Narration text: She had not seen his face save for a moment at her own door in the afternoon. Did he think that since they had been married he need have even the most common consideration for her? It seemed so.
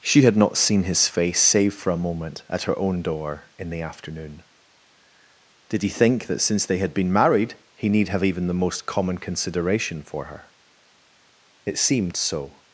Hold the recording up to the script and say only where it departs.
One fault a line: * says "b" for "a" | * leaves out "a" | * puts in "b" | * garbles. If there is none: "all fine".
all fine